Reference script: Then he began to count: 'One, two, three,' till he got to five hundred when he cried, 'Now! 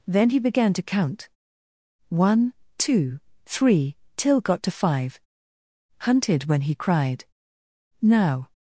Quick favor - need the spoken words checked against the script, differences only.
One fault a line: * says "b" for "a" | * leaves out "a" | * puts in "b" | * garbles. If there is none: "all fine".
* leaves out "he"
* says "hunted" for "hundred"